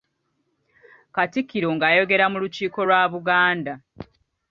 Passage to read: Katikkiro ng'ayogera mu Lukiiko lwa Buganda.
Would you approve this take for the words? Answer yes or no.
yes